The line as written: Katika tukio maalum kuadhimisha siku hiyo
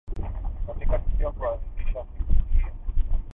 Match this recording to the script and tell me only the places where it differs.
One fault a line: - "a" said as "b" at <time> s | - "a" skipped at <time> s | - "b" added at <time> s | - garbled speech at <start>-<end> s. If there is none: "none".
- "maalum" skipped at 1.3 s